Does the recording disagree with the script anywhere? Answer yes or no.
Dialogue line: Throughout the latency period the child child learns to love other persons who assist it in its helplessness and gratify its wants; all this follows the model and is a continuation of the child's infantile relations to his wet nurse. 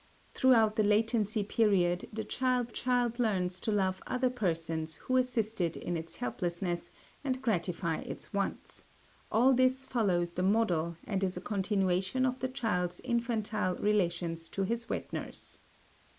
no